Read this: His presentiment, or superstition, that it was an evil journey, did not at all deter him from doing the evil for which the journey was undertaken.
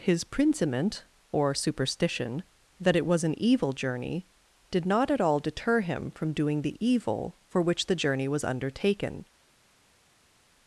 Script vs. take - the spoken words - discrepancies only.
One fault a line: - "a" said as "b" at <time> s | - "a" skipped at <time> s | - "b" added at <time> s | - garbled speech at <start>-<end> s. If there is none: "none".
none